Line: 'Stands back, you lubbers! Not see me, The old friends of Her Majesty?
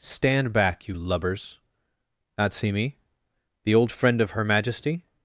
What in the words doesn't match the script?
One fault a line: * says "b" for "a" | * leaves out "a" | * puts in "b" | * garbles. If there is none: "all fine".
* says "Stand" for "Stands"
* says "friend" for "friends"